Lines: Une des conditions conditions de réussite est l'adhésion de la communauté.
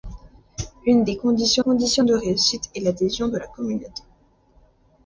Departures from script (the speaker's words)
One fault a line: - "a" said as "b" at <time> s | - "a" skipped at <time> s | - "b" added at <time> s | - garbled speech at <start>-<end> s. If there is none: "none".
none